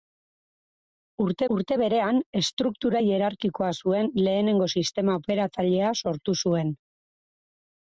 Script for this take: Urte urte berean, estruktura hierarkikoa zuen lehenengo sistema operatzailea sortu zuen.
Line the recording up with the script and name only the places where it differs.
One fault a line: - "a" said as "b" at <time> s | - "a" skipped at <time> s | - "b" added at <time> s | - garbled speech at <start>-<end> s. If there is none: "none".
none